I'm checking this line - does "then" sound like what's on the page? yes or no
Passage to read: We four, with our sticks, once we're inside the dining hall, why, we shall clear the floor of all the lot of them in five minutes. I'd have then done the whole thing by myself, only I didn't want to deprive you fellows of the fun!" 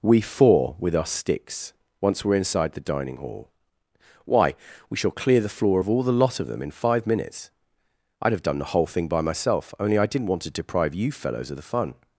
no